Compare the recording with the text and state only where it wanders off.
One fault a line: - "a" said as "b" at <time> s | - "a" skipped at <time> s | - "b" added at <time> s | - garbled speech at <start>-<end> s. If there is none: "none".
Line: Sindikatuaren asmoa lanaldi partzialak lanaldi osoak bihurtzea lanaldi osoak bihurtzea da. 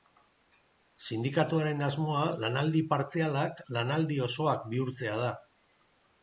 - "lanaldi osoak bihurtzea" skipped at 5.2 s